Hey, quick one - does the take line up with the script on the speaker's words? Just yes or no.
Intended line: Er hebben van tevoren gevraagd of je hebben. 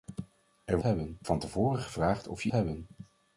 yes